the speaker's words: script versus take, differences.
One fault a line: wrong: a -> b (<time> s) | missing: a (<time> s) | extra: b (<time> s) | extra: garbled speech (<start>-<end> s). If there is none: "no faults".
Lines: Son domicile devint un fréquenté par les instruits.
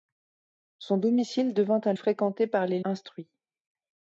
no faults